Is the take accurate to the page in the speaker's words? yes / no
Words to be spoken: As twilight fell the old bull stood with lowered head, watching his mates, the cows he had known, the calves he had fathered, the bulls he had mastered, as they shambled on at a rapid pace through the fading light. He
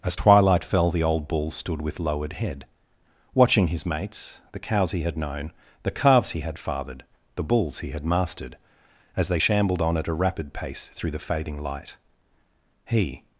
yes